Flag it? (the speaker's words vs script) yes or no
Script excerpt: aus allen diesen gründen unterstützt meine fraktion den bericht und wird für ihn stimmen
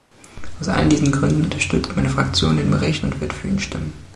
no